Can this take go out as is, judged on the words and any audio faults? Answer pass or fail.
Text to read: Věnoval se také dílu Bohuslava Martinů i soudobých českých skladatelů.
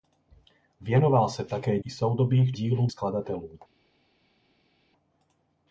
fail